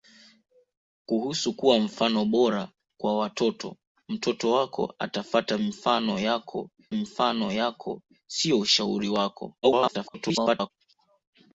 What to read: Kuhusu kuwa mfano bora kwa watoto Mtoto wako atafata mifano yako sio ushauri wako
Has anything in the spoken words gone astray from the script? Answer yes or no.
yes